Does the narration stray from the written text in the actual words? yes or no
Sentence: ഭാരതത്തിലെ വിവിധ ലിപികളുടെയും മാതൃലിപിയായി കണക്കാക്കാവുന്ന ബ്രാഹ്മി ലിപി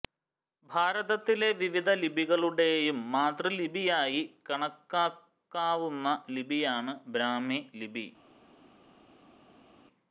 yes